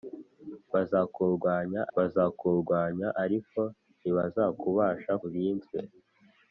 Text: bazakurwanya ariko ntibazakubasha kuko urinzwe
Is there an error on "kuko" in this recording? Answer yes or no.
yes